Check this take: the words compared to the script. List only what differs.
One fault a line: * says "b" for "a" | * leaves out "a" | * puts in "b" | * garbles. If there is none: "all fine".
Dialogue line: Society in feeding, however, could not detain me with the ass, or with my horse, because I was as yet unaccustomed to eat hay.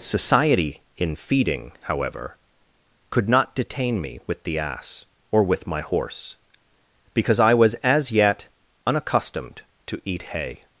all fine